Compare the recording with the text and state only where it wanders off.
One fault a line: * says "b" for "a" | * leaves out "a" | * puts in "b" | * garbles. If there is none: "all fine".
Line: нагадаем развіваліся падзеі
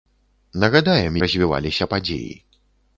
all fine